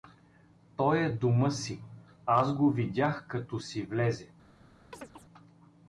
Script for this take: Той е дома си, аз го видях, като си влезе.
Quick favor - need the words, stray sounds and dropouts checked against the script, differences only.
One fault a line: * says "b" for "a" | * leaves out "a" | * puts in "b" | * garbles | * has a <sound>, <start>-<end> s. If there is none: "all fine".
* has a chirp, 4.9-5.3 s